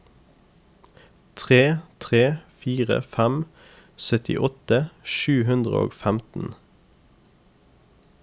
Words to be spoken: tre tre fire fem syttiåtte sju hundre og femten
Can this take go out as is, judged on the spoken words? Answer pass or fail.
pass